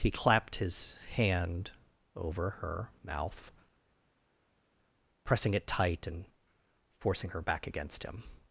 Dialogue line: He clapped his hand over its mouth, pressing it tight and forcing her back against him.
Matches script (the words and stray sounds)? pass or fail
fail